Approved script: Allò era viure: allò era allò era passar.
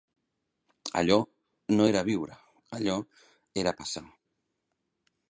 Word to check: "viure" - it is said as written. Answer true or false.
true